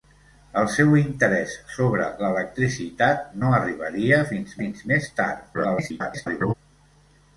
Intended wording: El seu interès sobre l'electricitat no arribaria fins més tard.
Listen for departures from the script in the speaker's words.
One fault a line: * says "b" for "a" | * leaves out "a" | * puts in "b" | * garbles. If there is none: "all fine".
* puts in "fins"
* garbles